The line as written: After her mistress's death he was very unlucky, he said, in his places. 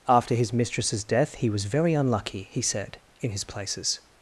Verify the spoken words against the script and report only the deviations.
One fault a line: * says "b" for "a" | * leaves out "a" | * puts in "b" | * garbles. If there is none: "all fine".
* says "his" for "her"